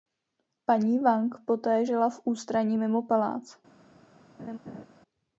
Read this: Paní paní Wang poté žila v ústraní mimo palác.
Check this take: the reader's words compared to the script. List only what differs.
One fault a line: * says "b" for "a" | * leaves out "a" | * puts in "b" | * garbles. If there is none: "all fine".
* leaves out "paní"